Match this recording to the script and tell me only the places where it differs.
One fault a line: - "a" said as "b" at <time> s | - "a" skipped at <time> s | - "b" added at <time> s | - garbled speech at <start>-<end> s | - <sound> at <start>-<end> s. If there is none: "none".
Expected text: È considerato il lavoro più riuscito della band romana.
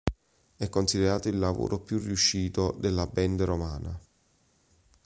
none